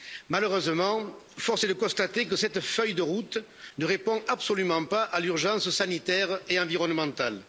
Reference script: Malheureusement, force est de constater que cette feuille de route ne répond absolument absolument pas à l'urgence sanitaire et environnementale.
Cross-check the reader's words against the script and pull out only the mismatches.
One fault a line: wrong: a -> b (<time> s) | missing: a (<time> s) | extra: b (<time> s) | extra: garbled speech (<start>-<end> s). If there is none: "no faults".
missing: absolument (4.9 s)